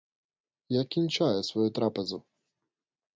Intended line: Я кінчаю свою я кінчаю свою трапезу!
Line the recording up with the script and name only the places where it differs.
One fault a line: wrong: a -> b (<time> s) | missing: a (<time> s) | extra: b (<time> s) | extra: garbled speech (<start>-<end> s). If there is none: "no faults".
missing: я кінчаю свою (1.7 s)